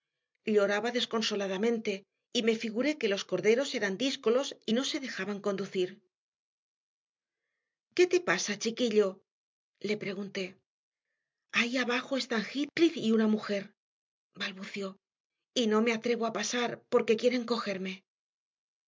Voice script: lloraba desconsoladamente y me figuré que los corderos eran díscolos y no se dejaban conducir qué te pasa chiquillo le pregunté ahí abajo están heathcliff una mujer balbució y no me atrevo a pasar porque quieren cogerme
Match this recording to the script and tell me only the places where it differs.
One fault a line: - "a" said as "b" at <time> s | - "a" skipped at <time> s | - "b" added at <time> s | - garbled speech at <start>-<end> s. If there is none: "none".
- "y" added at 13.0 s